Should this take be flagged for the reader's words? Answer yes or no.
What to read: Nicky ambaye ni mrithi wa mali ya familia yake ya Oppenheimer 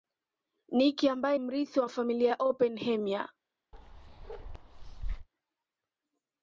yes